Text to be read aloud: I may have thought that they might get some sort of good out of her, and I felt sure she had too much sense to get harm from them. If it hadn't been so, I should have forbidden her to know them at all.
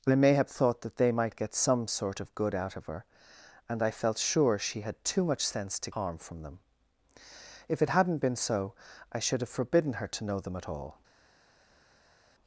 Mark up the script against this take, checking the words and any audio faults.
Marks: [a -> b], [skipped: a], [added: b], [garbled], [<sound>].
I may have thought that they might get some sort of good out of her, and I felt sure she had too much sense to [skipped: get] harm from them. If it hadn't been so, I should have forbidden her to know them at all.